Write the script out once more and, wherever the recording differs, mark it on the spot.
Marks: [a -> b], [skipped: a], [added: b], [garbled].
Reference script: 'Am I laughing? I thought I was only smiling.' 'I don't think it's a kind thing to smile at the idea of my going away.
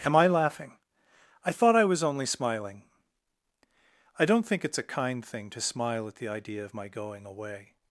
'Am I laughing? I thought I was only smiling.' 'I don't think it's a kind thing to smile at the idea of my going away.